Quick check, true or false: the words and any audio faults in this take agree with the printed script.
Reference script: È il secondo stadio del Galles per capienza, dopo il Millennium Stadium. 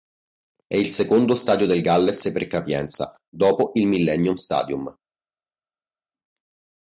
true